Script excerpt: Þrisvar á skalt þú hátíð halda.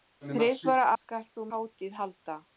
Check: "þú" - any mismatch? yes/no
no